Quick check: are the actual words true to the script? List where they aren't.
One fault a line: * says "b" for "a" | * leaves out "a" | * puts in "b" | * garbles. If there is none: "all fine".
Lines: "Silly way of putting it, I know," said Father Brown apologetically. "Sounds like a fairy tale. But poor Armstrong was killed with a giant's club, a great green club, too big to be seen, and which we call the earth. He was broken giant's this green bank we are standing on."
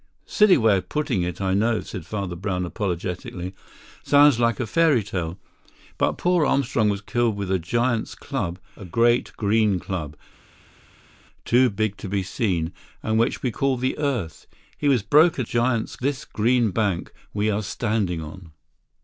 all fine